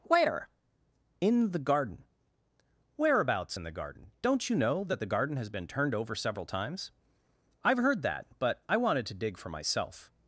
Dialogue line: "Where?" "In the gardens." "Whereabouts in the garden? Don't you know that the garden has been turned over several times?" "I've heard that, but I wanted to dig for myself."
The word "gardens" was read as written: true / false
false